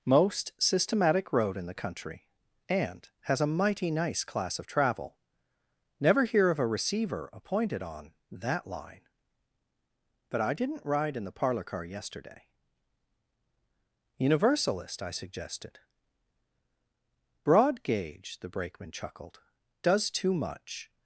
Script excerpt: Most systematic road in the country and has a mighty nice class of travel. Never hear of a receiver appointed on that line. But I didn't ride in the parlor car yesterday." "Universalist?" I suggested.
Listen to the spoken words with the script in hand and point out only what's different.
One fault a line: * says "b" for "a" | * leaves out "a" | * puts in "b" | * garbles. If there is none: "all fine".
* puts in "Broad gauge the Brakeman chuckled does too much"